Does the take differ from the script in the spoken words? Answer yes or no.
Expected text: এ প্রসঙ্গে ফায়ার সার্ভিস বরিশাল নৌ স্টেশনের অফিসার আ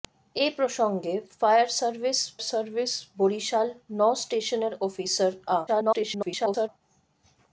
yes